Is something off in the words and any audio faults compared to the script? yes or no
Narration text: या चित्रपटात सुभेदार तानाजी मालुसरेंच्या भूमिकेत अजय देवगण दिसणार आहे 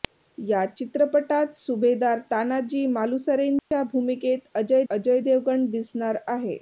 yes